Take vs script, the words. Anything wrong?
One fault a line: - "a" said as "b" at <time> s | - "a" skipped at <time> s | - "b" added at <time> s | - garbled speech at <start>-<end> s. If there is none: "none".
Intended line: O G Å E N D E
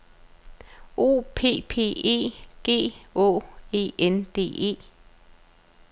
- "P P E" added at 1.4 s